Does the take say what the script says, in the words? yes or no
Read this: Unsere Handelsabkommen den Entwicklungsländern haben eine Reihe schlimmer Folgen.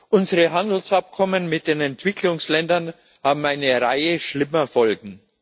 no